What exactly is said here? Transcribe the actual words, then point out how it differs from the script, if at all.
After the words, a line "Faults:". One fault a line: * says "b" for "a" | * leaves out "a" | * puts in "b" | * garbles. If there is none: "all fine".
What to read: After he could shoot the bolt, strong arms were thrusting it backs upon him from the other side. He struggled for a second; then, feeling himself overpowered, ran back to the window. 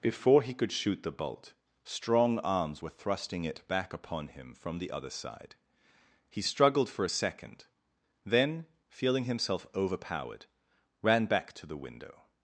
Before he could shoot the bolt, strong arms were thrusting it back upon him from the other side. He struggled for a second; then, feeling himself overpowered, ran back to the window.
Faults:
* says "Before" for "After"
* says "back" for "backs"